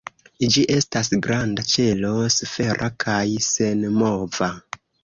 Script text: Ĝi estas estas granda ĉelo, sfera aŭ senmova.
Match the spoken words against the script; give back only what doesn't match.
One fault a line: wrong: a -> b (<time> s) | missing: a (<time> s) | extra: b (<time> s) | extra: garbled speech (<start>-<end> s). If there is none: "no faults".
missing: estas (1.1 s)
wrong: aŭ -> kaj (3.1 s)